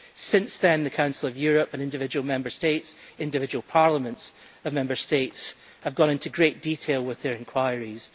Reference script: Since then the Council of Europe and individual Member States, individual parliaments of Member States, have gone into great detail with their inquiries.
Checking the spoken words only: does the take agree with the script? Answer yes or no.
yes